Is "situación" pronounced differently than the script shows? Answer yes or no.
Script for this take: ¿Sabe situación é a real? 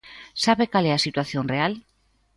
yes